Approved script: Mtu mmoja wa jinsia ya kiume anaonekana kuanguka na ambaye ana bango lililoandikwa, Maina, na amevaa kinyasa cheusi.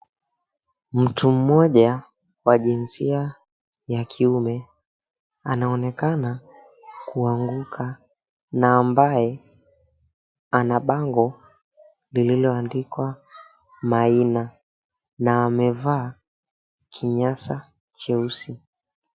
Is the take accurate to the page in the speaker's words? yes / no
yes